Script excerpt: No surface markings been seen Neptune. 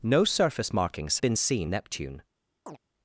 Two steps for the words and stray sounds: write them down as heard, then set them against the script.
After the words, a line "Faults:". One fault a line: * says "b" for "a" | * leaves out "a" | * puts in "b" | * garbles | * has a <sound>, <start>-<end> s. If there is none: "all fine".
No surface markings been seen Neptune.
Faults:
* has a chirp, 2.7-2.8 s